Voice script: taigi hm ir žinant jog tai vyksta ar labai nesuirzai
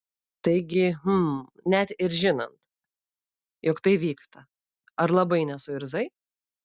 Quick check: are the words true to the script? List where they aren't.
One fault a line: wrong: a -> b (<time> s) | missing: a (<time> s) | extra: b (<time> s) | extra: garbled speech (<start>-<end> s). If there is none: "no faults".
extra: net (1.7 s)